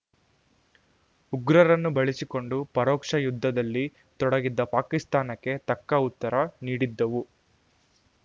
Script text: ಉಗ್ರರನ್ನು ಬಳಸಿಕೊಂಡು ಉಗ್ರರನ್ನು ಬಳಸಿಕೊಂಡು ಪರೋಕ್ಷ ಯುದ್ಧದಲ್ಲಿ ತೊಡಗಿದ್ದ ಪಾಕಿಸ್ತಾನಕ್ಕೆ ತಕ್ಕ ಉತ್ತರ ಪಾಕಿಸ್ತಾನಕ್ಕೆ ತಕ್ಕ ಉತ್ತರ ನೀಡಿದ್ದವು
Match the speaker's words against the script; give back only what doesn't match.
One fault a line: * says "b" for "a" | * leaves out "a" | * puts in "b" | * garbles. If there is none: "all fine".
* leaves out "ಉಗ್ರರನ್ನು ಬಳಸಿಕೊಂಡು"
* leaves out "ಪಾಕಿಸ್ತಾನಕ್ಕೆ ತಕ್ಕ ಉತ್ತರ"